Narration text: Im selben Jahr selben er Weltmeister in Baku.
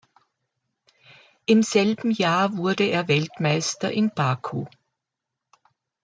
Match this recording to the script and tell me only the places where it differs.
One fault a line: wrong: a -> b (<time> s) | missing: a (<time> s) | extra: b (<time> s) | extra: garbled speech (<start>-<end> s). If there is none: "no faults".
wrong: selben -> wurde (2.6 s)